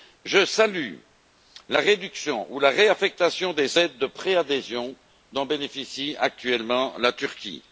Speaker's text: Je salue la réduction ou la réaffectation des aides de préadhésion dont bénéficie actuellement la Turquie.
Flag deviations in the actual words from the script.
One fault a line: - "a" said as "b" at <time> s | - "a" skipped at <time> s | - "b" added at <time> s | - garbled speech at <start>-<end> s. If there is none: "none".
none